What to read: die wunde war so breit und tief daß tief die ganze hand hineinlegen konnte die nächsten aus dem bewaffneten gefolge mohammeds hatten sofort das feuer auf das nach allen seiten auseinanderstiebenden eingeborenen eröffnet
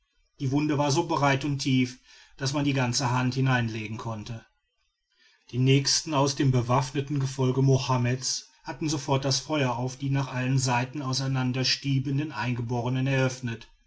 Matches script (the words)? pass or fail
fail